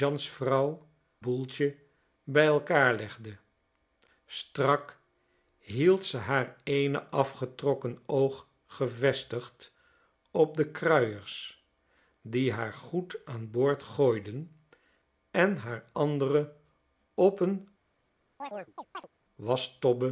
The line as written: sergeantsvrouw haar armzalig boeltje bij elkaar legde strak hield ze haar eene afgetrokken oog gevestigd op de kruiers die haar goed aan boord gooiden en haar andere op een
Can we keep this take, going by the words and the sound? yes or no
no